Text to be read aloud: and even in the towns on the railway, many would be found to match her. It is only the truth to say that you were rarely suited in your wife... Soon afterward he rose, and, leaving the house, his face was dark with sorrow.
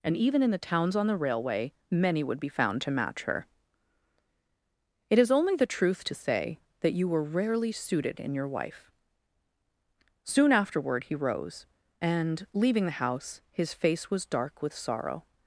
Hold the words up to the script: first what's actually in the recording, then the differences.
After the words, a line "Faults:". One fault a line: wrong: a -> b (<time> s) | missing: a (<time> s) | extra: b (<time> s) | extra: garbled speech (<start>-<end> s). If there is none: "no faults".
and even in the towns on the railway, many would be found to match her. It is only the truth to say that you were rarely suited in your wife... Soon afterward he rose, and, leaving the house, his face was dark with sorrow.
Faults:
no faults